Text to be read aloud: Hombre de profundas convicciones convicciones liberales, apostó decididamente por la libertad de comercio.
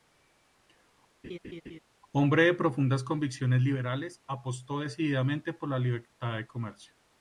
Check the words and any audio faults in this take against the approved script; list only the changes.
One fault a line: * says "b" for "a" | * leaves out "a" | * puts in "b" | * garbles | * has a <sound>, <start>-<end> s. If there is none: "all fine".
* has a laugh, 1.2-1.8 s
* leaves out "convicciones"